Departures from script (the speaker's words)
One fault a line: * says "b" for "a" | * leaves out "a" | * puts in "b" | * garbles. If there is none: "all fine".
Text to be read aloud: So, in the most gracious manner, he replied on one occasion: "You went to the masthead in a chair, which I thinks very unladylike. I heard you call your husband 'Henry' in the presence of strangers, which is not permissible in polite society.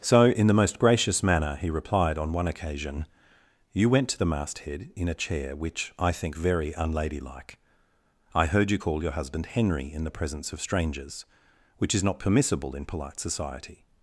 * says "think" for "thinks"